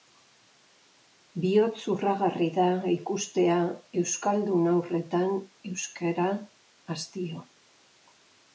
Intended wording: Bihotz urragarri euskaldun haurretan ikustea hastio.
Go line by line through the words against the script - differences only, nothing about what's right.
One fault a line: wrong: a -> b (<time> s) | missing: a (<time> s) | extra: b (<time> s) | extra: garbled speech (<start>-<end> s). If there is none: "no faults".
extra: da ikustea (2.5 s)
wrong: ikustea -> euskara (5.7 s)